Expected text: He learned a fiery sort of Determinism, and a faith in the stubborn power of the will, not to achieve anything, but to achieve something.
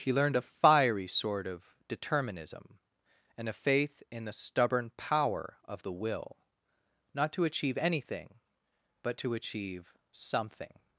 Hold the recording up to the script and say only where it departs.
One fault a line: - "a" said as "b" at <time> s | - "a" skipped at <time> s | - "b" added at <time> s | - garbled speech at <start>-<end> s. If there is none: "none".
none